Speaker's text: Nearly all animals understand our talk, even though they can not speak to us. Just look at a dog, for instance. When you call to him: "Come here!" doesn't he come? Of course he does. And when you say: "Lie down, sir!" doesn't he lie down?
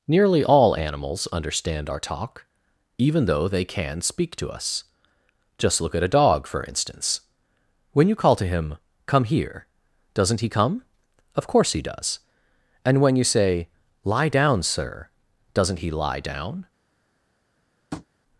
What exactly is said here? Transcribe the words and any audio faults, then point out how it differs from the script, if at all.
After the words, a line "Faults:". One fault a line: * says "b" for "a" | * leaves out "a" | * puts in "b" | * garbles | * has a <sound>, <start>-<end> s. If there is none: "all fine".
Nearly all animals understand our talk, even though they can speak to us. Just look at a dog, for instance. When you call to him: "Come here!" doesn't he come? Of course he does. And when you say: "Lie down, sir!" doesn't he lie down?
Faults:
* leaves out "not"
* has a tap, 17.9-18.1 s